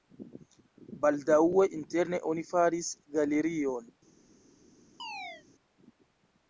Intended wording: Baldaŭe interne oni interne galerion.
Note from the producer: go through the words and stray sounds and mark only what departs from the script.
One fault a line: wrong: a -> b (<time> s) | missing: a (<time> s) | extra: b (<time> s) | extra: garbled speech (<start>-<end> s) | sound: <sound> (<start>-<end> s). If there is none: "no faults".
wrong: interne -> faris (2.5 s)
sound: chirp (5.0-5.4 s)